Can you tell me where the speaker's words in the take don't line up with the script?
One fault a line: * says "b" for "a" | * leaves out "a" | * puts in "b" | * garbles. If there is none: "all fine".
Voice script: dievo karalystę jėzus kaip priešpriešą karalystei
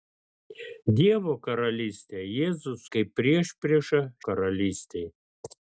all fine